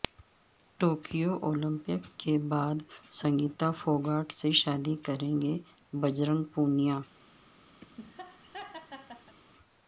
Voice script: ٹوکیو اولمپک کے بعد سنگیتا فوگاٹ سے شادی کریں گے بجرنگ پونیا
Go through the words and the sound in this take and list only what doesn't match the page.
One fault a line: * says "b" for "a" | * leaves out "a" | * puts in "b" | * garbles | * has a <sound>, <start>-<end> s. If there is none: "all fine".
* has a laugh, 7.8-9.3 s